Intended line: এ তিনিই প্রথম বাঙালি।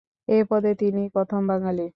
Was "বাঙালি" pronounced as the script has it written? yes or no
yes